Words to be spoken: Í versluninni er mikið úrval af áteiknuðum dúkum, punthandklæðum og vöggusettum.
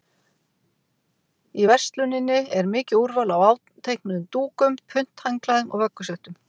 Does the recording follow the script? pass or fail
pass